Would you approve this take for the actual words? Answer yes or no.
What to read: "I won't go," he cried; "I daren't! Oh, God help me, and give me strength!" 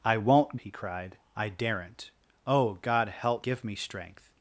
no